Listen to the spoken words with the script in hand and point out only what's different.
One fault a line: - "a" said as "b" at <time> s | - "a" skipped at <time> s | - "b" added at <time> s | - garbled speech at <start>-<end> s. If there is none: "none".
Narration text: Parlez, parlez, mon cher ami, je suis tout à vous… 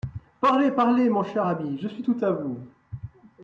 none